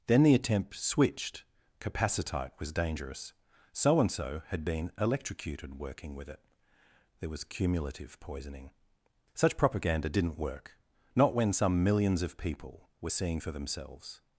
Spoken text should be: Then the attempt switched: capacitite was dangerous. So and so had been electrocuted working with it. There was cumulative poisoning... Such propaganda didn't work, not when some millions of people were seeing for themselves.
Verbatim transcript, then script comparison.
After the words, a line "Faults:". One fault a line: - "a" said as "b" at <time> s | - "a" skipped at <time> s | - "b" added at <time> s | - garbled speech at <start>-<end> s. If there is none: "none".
Then the attempt switched: capacitite was dangerous. So and so had been electrocuted working with it. There was cumulative poisoning... Such propaganda didn't work, not when some millions of people were seeing for themselves.
Faults:
none